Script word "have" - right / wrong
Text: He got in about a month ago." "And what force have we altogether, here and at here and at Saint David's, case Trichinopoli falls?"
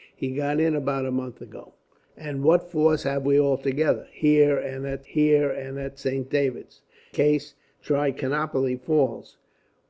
right